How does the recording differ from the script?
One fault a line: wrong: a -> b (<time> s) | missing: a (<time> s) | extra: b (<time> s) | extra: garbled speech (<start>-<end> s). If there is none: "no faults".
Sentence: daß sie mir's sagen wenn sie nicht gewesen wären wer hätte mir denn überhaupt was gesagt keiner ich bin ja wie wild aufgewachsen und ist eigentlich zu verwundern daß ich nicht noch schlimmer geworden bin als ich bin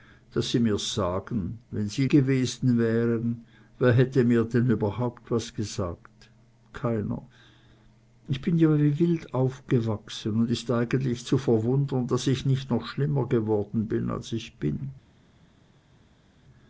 missing: nicht (2.1 s)